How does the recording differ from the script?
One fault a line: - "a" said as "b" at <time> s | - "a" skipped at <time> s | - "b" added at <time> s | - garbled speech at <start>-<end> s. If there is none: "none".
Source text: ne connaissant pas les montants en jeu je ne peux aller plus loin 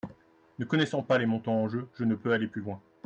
none